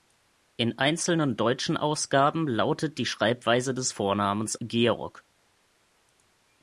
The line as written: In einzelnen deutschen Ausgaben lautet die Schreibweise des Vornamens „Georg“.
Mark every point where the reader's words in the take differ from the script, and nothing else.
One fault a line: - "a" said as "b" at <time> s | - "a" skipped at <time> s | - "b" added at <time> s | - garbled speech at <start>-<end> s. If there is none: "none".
none